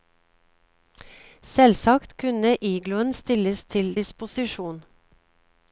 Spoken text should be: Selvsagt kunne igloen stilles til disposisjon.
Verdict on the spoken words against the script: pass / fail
pass